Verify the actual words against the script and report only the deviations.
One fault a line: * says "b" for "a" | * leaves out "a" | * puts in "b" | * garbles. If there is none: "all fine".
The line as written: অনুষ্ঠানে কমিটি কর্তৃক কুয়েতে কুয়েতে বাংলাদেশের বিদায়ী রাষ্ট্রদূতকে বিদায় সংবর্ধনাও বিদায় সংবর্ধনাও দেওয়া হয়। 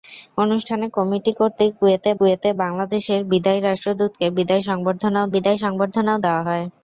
all fine